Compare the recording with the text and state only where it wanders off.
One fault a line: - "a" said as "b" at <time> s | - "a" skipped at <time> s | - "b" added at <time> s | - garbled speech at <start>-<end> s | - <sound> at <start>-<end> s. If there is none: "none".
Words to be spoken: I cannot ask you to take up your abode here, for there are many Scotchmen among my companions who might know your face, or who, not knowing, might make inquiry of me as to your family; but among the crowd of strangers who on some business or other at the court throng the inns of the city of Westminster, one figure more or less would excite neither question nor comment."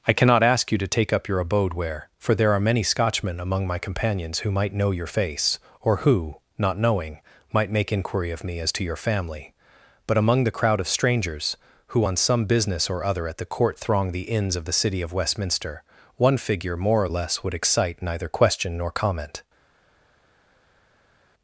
- "here" said as "where" at 1.8 s